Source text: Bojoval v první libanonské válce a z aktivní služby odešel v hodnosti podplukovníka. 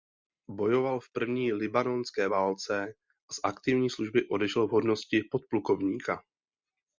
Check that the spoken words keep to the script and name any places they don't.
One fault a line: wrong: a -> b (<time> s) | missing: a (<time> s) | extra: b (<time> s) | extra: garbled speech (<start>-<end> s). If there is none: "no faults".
no faults